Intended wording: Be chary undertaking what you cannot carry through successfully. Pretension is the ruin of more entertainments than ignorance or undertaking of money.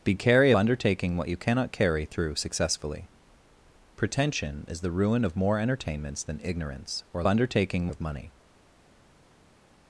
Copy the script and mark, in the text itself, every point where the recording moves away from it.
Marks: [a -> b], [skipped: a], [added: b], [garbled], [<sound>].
Be chary undertaking what you cannot carry through successfully. Pretension is the ruin of more entertainments than ignorance or undertaking of money.